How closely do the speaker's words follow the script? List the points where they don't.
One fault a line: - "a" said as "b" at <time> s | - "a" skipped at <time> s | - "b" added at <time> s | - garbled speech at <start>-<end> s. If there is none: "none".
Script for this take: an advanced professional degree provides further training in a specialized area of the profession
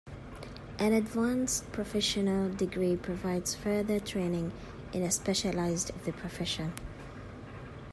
- "area" skipped at 5.9 s